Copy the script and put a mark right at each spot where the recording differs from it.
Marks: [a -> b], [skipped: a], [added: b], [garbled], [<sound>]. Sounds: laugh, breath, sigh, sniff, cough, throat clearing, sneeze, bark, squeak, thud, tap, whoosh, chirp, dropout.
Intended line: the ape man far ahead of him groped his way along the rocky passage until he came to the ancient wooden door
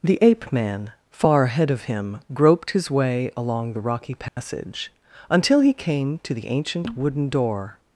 the ape man far ahead of him groped his way along the rocky passage [dropout] until he came to the ancient wooden door